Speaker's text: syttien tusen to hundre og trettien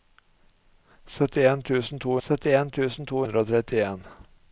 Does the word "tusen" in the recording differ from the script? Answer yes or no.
no